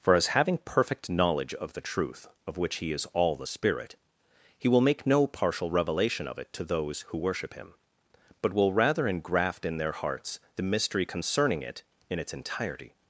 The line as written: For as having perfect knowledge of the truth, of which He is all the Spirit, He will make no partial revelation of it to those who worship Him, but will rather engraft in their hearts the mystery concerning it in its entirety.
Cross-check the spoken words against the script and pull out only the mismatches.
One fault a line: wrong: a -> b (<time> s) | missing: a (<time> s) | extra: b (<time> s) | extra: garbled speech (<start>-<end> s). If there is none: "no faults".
no faults